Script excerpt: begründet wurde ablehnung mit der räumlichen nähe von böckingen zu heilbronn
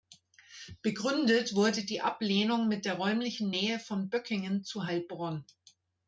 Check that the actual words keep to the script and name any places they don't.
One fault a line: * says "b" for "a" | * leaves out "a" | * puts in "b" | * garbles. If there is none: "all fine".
* puts in "die"